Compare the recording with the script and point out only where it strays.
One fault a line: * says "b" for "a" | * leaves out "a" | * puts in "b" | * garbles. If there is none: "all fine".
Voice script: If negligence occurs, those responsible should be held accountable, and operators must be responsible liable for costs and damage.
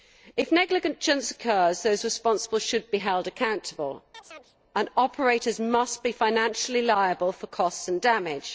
* says "financially" for "responsible"